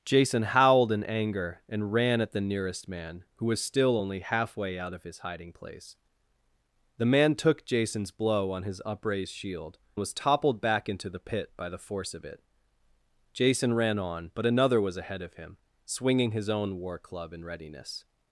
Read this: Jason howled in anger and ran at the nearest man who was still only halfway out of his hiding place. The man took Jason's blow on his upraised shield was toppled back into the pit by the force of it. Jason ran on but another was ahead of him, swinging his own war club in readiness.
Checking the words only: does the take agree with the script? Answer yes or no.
yes